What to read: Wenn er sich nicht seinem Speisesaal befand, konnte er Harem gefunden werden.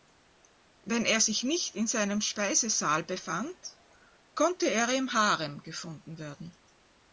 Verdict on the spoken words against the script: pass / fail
fail